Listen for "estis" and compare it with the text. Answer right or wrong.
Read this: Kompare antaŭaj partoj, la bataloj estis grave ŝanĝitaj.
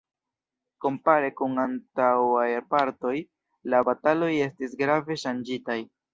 right